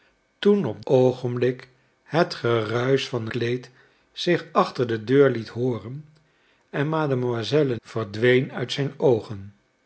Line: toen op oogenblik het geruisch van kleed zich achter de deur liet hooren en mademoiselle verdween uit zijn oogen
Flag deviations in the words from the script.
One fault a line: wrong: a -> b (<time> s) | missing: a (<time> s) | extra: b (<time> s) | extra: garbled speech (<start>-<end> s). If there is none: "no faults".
no faults